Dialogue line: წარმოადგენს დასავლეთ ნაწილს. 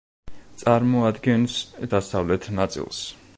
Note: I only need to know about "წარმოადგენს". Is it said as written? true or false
true